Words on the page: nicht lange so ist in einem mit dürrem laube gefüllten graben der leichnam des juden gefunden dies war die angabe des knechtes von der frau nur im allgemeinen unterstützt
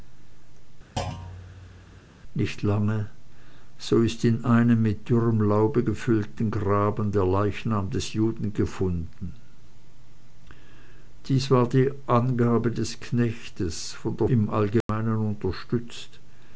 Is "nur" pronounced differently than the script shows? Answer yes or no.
yes